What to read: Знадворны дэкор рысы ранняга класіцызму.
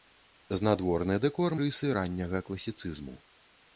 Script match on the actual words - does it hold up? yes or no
yes